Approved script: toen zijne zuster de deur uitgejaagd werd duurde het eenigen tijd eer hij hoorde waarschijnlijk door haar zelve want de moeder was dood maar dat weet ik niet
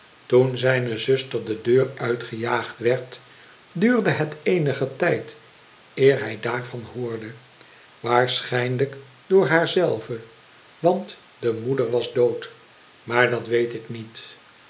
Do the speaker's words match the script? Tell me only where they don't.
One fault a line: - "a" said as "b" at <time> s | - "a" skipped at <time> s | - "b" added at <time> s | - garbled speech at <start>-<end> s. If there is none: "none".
- "daarvan" added at 6.4 s